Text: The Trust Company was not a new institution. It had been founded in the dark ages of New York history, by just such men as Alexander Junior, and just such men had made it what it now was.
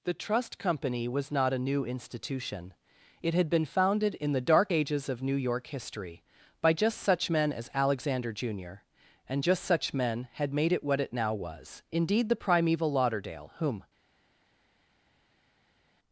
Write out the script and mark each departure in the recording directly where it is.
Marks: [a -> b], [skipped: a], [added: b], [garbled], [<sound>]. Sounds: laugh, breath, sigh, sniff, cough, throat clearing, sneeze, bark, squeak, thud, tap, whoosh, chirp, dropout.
The Trust Company was not a new institution. It had been founded in the dark ages of New York history, by just such men as Alexander Junior, and just such men had made it what it now was. [added: Indeed the primeval Lauderdale whom]